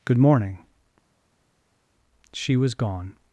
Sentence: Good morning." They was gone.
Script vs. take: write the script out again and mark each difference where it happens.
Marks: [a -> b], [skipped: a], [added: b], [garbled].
Good morning." [They -> She] was gone.